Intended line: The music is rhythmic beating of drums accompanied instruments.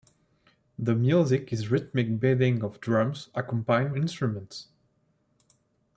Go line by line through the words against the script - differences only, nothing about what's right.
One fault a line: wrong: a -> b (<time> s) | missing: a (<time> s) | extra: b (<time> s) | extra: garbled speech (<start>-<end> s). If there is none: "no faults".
no faults